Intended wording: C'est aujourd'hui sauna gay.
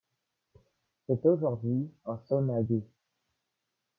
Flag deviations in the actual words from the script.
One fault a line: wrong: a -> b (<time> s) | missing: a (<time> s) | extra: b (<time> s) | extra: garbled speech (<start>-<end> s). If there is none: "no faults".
extra: un (2.0 s)